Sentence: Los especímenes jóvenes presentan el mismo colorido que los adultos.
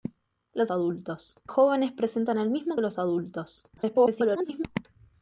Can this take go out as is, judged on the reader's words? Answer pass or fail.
fail